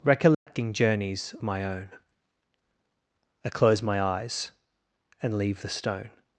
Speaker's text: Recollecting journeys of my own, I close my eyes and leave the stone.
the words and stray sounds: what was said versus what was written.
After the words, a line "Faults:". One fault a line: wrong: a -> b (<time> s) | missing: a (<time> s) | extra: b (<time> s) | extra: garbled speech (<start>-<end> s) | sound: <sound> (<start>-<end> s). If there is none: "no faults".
Recollecting journeys my own, I close my eyes and leave the stone.
Faults:
sound: dropout (0.3-0.5 s)
missing: of (1.4 s)